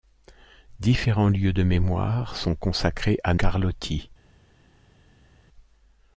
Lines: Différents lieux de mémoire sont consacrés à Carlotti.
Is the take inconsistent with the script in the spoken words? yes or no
no